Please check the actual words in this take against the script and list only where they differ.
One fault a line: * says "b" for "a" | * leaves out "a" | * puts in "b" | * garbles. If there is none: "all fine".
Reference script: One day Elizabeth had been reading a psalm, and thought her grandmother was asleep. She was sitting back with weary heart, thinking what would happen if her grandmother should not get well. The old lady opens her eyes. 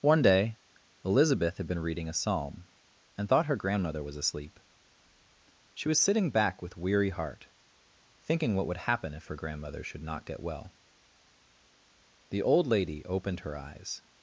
* says "opened" for "opens"